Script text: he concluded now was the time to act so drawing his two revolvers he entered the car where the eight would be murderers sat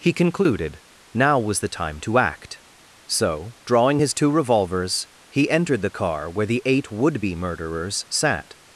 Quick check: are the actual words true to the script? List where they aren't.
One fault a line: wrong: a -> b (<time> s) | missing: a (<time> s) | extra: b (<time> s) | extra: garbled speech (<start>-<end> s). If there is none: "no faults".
no faults